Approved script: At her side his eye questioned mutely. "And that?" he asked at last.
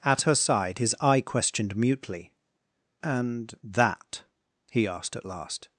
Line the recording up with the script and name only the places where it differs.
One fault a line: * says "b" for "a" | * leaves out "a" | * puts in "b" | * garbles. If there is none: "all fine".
all fine